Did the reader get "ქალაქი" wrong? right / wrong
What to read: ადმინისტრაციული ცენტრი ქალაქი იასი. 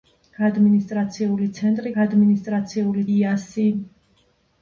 wrong